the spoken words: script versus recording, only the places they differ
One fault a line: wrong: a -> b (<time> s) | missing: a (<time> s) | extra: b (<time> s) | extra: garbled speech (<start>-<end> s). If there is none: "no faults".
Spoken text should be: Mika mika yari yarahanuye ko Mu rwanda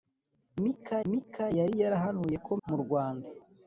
no faults